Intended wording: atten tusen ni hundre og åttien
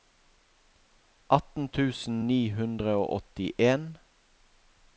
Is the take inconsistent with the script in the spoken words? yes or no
no